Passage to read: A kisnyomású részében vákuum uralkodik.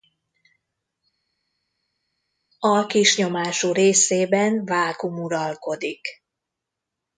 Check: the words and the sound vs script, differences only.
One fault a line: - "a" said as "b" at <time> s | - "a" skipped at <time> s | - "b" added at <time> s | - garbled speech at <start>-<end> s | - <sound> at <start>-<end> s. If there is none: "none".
none